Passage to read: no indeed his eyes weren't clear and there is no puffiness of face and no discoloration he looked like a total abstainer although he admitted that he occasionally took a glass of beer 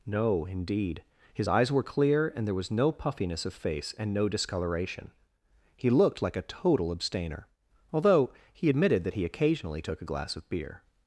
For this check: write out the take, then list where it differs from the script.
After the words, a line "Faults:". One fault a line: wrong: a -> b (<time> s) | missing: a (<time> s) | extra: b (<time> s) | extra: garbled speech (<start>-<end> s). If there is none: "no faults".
no indeed his eyes were clear and there was no puffiness of face and no discoloration he looked like a total abstainer although he admitted that he occasionally took a glass of beer
Faults:
wrong: weren't -> were (1.7 s)
wrong: is -> was (2.5 s)